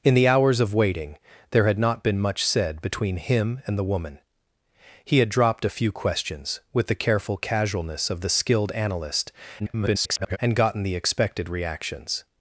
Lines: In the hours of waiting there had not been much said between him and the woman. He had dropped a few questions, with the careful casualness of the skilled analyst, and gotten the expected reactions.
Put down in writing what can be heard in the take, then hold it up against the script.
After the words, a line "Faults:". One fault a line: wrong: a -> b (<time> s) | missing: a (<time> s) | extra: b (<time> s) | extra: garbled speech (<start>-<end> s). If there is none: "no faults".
In the hours of waiting there had not been much said between him and the woman. He had dropped a few questions, with the careful casualness of the skilled analyst, [garbled] and gotten the expected reactions.
Faults:
extra: garbled speech (9.6-10.4 s)